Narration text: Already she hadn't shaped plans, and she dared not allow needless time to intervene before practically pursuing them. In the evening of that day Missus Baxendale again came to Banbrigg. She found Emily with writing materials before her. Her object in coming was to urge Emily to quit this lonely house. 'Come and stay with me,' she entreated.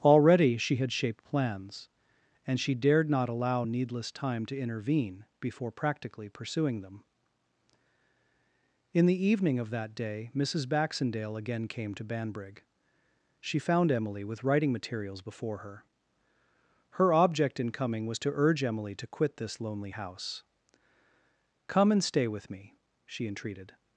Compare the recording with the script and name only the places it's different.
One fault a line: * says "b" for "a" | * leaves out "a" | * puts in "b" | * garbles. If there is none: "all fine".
* says "had" for "hadn't"